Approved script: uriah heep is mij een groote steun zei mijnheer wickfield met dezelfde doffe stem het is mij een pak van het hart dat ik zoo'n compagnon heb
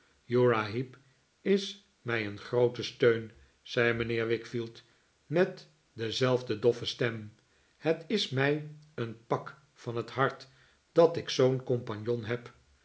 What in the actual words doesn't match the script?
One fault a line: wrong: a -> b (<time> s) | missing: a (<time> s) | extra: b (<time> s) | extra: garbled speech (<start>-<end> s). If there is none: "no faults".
no faults